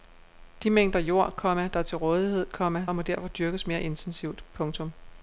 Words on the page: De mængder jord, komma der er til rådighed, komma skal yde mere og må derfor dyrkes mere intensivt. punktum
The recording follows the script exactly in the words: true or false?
false